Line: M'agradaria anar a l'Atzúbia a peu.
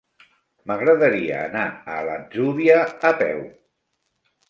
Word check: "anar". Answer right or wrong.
right